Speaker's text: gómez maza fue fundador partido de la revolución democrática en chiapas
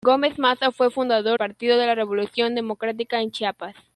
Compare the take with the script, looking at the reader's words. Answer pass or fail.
pass